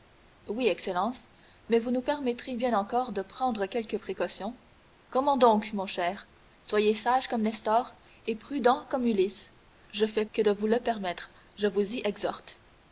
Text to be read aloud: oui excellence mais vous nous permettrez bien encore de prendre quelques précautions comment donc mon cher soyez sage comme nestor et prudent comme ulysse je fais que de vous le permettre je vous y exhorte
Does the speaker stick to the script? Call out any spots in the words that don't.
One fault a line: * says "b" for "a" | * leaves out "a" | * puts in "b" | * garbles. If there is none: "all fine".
all fine